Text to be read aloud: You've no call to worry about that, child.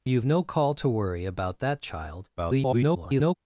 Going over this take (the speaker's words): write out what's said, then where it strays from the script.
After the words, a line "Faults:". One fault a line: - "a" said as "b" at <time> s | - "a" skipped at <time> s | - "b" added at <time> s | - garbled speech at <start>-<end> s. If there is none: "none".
You've no call to worry about that, child. [garbled]
Faults:
- garbled speech at 2.4-3.3 s